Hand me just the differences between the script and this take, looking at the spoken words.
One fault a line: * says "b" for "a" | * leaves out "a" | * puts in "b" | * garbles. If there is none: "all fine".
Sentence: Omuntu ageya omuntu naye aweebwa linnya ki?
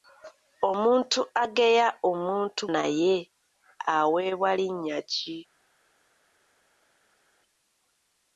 all fine